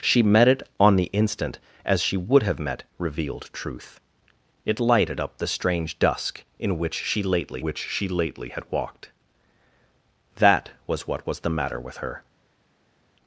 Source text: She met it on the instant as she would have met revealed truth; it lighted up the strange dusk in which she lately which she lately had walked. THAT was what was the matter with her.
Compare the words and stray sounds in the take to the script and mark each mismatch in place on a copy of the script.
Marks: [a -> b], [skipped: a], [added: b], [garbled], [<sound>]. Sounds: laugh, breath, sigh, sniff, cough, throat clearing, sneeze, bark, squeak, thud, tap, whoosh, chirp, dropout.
She met it on the instant as she would have met revealed truth; it lighted up the strange dusk in which she lately which she lately had walked. THAT was what was the matter with her.